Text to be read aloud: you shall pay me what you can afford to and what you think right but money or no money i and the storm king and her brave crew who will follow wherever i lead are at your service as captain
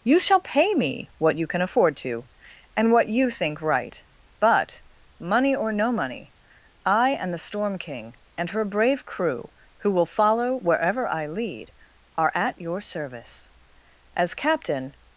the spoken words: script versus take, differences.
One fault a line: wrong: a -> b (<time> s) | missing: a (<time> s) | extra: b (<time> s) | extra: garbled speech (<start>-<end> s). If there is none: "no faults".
no faults